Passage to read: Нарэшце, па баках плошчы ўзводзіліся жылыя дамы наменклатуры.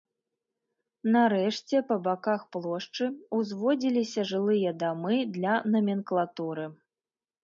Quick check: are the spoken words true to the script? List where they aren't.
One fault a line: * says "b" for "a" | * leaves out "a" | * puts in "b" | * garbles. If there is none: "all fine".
* puts in "для"